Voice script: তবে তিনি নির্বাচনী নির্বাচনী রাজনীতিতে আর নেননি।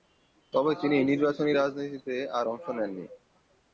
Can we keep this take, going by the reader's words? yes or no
no